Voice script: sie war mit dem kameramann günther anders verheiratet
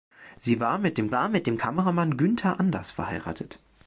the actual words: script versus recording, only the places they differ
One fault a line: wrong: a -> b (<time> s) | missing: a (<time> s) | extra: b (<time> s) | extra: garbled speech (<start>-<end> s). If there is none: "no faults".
extra: war mit dem (1.1 s)